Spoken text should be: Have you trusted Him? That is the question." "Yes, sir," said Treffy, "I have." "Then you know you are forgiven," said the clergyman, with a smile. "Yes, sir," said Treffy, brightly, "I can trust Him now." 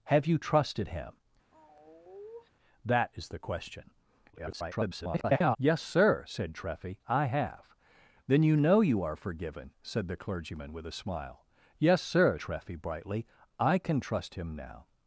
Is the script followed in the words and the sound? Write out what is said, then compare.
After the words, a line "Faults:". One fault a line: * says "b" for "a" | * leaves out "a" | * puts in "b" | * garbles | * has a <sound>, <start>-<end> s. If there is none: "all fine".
Have you trusted Him? That is the question." [garbled] "Yes, sir," said Treffy, "I have." "Then you know you are forgiven," said the clergyman, with a smile. "Yes, sir," Treffy, brightly, "I can trust Him now."
Faults:
* has a sigh, 1.5-2.5 s
* garbles
* leaves out "said"